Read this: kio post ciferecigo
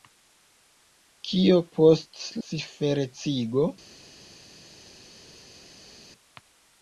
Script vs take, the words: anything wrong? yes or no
no